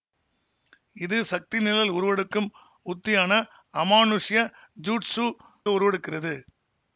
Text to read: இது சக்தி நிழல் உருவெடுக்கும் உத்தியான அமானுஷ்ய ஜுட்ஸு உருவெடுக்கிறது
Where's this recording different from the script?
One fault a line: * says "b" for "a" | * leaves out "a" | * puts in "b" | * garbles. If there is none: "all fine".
all fine